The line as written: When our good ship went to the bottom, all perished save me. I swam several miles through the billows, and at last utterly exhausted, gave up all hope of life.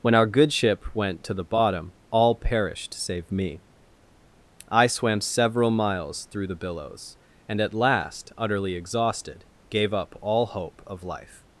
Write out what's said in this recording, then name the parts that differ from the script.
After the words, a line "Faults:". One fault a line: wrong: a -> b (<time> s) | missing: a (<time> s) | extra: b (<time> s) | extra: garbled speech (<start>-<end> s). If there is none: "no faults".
When our good ship went to the bottom, all perished save me. I swam several miles through the billows, and at last utterly exhausted, gave up all hope of life.
Faults:
no faults